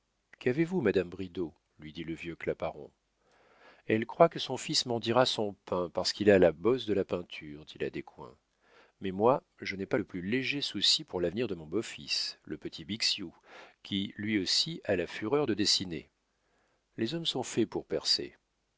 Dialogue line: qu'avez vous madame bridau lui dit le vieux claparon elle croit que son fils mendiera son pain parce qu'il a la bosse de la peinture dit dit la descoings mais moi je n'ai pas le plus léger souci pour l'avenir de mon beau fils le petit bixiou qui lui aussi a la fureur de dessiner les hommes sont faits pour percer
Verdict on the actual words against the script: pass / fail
fail